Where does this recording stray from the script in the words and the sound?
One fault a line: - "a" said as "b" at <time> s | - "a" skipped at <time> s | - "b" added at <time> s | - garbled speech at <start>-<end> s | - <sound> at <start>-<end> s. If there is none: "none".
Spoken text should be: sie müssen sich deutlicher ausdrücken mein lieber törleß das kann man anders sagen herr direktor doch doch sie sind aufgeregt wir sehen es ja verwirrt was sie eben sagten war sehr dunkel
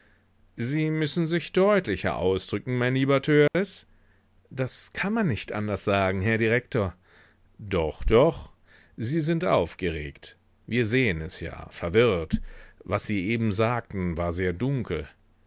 - dropout at 3.5-3.5 s
- "nicht" added at 5.3 s